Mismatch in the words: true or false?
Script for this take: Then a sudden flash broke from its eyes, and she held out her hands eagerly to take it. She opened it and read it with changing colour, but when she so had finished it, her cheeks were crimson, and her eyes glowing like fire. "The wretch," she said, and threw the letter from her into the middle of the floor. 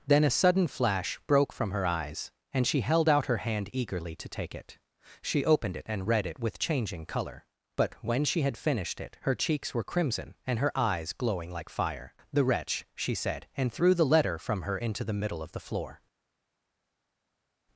true